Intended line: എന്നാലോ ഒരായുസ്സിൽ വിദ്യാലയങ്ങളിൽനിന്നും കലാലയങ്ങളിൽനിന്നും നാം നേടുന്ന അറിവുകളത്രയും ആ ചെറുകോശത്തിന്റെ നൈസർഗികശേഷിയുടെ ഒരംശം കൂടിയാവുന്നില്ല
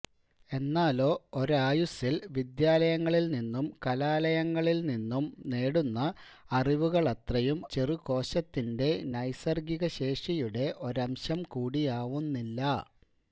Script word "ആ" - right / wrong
wrong